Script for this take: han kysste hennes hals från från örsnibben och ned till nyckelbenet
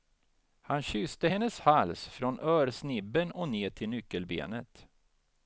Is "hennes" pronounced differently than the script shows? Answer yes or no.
no